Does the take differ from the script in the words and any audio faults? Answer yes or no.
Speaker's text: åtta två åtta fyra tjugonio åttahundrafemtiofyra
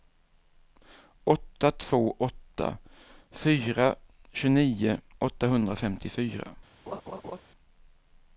yes